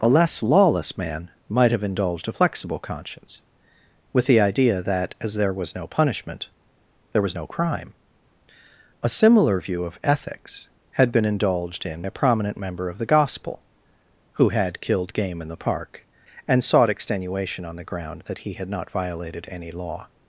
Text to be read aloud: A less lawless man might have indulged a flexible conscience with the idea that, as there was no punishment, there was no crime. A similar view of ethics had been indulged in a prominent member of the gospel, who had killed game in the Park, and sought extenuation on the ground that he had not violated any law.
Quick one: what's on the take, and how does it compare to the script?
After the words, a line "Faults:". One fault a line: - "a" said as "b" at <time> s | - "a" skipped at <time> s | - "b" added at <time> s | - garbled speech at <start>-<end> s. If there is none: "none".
A less lawless man might have indulged a flexible conscience with the idea that, as there was no punishment, there was no crime. A similar view of ethics had been indulged in a prominent member of the gospel, who had killed game in the Park, and sought extenuation on the ground that he had not violated any law.
Faults:
none